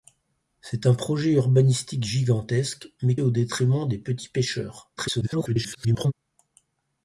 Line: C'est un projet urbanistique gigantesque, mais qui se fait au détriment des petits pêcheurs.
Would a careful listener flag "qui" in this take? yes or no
yes